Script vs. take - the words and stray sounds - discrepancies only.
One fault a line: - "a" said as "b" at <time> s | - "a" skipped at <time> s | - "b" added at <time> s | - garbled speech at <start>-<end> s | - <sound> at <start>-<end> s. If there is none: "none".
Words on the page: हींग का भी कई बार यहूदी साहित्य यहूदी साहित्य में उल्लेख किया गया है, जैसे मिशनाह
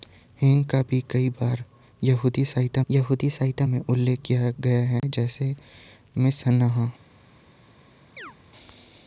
- dropout at 5.0-5.0 s
- chirp at 8.2-8.3 s